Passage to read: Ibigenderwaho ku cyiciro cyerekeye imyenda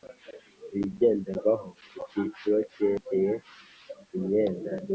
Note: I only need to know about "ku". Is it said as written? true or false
true